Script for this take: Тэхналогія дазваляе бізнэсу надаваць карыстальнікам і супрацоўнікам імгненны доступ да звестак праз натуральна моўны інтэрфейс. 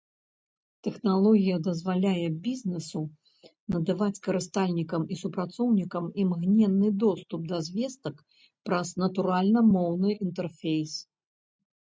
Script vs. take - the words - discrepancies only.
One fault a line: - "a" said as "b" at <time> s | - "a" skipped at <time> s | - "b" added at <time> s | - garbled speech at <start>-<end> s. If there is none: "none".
none